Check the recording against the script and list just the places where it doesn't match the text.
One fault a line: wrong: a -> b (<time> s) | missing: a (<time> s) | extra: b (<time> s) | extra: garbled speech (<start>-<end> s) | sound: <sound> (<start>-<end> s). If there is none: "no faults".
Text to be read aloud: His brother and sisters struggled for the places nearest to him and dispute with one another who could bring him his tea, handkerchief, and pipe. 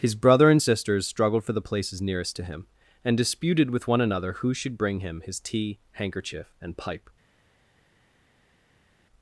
wrong: dispute -> disputed (3.2 s)
wrong: could -> should (4.5 s)